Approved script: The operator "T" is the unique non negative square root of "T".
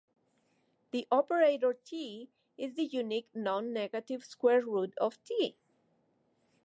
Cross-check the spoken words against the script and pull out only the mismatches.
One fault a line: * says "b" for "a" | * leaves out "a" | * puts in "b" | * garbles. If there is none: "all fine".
all fine